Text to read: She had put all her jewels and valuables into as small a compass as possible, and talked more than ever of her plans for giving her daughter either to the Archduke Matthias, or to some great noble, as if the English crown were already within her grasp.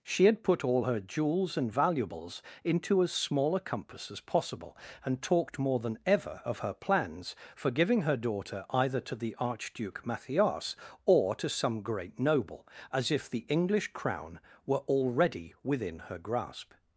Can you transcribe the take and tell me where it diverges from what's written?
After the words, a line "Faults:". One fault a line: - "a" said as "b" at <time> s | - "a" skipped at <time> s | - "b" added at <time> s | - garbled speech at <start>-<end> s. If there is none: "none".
She had put all her jewels and valuables into as small a compass as possible, and talked more than ever of her plans for giving her daughter either to the Archduke Matthias, or to some great noble, as if the English crown were already within her grasp.
Faults:
none